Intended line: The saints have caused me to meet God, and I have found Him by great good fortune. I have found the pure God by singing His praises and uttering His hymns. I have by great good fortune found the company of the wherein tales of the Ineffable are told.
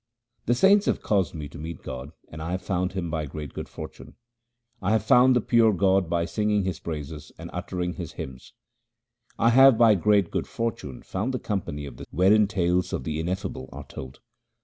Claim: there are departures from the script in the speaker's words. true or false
false